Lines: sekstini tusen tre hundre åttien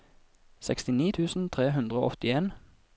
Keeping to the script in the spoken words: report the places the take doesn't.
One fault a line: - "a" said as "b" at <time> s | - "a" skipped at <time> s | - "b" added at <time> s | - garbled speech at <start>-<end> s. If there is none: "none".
- "og" added at 2.0 s